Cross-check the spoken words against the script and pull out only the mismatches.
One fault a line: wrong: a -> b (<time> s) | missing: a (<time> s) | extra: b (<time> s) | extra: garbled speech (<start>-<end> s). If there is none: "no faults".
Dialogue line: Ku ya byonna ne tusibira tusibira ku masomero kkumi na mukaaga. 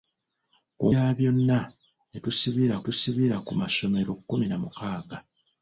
no faults